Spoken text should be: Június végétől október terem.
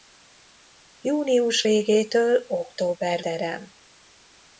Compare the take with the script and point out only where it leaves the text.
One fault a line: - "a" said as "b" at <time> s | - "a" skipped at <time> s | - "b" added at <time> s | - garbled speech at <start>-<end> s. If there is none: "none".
none